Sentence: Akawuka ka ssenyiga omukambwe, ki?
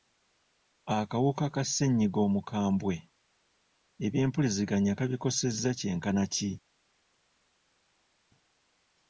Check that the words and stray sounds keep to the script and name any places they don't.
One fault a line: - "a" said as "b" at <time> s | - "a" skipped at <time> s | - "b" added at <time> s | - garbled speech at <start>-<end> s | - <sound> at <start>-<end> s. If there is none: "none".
- "ebyempuliziganya kabikosezza kyenkana" added at 4.1 s